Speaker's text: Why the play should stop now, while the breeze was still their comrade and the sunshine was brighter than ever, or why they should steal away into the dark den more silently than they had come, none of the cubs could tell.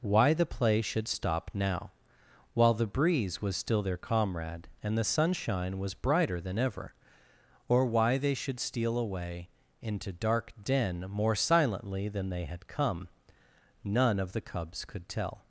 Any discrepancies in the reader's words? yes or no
yes